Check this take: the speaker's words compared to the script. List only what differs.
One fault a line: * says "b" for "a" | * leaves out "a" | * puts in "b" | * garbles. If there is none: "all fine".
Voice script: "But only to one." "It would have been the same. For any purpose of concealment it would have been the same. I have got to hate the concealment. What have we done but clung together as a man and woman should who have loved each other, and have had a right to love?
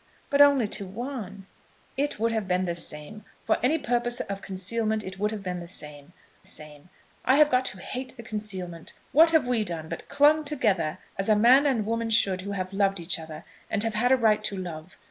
* puts in "same"